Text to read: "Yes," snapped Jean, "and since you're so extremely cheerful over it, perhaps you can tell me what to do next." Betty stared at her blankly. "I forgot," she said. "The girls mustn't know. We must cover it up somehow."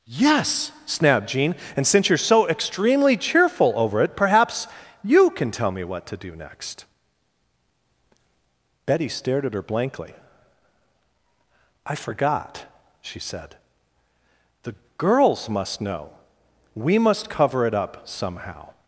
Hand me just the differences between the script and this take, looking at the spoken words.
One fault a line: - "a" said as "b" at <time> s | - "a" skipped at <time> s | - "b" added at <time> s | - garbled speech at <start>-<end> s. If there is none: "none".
- "mustn't" said as "must" at 15.5 s